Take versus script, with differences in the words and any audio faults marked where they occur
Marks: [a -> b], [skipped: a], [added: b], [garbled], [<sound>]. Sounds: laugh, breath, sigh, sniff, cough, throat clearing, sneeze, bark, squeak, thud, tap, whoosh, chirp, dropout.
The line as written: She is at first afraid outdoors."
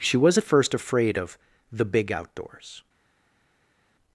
She [is -> was] at first afraid [added: of the big] outdoors."